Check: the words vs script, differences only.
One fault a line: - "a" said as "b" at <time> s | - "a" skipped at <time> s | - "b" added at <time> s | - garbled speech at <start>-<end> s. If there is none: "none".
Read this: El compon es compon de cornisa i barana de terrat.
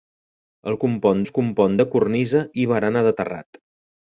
none